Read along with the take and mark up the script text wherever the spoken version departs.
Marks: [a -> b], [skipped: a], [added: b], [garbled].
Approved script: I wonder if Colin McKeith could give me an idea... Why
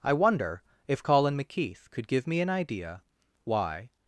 I wonder if Colin McKeith could give me an idea... Why